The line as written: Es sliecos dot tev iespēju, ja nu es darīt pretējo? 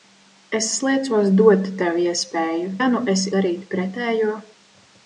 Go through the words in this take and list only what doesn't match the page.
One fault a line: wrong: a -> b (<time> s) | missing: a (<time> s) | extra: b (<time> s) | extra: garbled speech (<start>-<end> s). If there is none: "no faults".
no faults